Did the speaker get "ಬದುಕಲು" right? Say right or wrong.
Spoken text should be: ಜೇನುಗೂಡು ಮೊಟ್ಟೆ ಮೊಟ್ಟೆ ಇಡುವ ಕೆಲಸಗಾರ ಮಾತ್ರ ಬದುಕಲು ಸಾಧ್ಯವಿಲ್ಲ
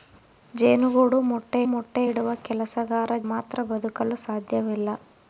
right